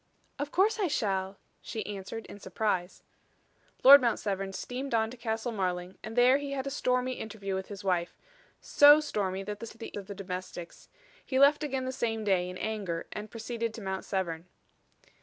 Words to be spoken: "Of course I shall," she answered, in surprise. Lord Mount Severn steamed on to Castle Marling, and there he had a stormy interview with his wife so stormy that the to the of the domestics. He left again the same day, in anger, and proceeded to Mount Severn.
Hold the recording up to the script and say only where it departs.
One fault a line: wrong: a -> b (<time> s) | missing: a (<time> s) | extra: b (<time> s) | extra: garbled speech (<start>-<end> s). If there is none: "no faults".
no faults